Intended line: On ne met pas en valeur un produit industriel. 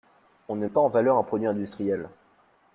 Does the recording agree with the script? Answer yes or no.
no